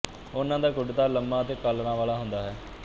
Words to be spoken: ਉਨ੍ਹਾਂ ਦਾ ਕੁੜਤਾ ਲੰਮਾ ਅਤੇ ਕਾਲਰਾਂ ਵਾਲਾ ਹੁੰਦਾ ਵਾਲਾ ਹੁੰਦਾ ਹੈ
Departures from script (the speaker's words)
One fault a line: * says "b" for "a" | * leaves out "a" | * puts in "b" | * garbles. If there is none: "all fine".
* leaves out "ਵਾਲਾ ਹੁੰਦਾ"